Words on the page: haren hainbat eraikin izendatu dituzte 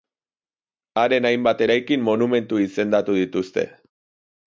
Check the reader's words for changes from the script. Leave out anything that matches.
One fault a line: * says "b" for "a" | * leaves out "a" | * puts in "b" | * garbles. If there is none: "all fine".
* puts in "monumentu"